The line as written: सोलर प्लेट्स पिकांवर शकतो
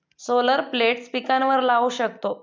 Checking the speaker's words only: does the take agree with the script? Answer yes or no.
no